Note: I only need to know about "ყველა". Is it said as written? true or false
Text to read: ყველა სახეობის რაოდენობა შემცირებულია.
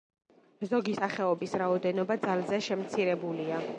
false